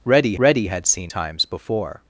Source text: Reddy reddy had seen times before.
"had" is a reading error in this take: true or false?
false